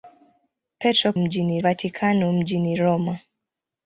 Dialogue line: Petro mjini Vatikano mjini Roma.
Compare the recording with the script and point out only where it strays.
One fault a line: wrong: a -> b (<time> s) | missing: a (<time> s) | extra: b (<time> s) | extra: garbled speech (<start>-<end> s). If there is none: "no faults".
no faults